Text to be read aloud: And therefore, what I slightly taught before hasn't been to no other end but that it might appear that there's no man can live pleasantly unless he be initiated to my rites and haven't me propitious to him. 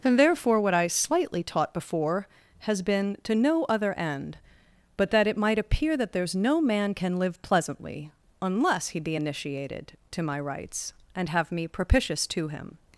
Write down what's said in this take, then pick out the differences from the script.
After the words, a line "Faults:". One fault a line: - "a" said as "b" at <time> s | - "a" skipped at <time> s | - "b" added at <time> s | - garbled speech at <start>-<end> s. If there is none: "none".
And therefore, what I slightly taught before has been to no other end but that it might appear that there's no man can live pleasantly unless he be initiated to my rites and have me propitious to him.
Faults:
- "hasn't" said as "has" at 2.6 s
- "haven't" said as "have" at 11.3 s